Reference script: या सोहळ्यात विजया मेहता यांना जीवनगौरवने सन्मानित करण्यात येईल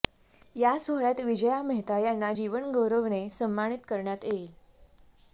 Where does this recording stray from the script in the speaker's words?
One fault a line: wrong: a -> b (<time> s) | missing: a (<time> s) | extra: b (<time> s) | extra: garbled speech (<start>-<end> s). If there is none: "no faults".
no faults